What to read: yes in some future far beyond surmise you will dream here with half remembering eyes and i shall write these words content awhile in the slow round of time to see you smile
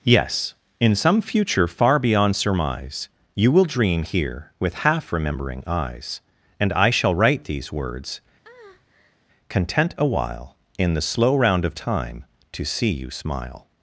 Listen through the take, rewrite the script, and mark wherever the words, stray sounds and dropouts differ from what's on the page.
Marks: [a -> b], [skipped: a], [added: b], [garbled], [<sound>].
yes in some future far beyond surmise you will dream here with half remembering eyes and i shall write these words [breath] content awhile in the slow round of time to see you smile